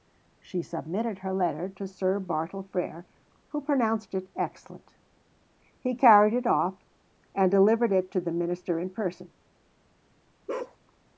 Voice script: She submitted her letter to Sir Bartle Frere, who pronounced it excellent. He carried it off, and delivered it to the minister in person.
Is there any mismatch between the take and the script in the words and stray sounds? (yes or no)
yes